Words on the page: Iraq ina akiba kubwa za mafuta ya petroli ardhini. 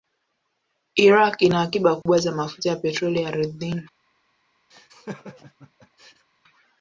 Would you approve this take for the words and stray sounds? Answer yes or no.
no